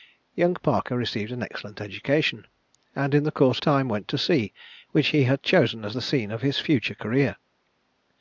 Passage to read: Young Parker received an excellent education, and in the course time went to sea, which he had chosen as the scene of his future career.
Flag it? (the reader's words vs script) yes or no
no